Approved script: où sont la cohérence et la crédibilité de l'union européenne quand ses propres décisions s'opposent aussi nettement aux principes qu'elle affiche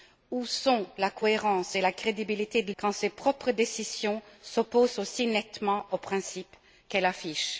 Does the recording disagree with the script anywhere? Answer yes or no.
yes